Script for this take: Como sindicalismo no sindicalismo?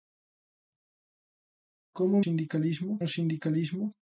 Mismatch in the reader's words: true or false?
false